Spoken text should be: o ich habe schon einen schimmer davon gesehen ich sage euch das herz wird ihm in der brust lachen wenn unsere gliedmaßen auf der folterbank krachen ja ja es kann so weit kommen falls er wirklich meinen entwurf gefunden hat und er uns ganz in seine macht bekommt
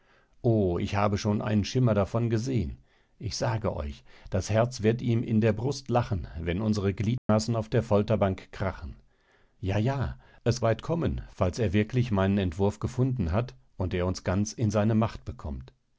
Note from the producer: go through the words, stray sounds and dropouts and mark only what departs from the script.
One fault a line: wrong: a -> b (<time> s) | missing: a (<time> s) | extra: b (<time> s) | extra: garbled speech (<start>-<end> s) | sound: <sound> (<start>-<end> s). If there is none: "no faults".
sound: dropout (7.2-7.3 s)
missing: kann so (10.6 s)